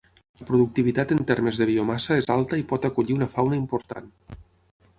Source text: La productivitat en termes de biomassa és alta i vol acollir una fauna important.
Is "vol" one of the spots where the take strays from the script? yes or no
yes